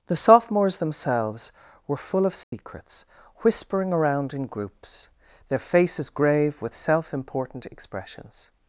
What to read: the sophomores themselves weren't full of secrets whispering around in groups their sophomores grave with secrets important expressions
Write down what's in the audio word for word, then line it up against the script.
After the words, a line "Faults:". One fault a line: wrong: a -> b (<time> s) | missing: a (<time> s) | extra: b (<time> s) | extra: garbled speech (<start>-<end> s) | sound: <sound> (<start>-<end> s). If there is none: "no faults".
the sophomores themselves were full of secrets whispering around in groups their faces grave with self important expressions
Faults:
wrong: weren't -> were (1.9 s)
sound: dropout (2.4-2.5 s)
wrong: sophomores -> faces (5.6 s)
wrong: secrets -> self (6.7 s)